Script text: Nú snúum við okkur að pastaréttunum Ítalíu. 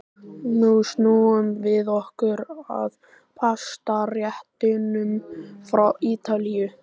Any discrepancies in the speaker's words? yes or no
yes